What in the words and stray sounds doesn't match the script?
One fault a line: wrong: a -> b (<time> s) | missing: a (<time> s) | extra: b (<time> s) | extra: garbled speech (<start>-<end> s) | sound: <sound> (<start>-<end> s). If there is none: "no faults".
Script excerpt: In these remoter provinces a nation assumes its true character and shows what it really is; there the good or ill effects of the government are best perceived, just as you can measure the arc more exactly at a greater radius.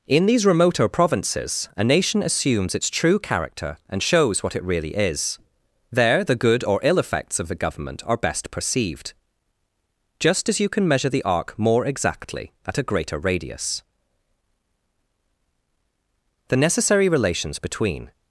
extra: The necessary relations between (16.5 s)